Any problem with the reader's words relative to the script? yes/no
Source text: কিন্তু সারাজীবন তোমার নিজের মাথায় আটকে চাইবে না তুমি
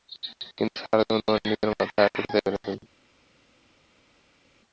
no